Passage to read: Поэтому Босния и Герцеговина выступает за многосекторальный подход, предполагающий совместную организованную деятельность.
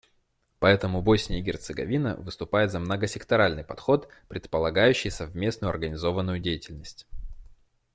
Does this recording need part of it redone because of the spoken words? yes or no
no